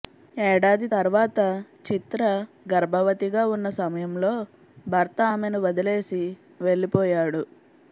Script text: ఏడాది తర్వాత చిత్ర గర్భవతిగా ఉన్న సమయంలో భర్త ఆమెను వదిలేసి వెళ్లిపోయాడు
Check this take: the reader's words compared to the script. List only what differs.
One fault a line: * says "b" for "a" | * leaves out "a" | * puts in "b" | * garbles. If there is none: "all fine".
all fine